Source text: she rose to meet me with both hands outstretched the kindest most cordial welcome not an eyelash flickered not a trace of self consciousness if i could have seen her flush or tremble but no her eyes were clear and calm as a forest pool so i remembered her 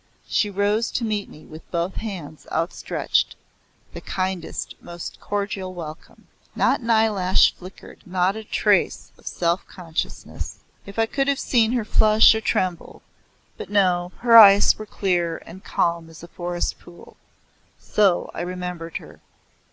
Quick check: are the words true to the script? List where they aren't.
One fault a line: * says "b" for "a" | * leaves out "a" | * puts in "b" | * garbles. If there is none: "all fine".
all fine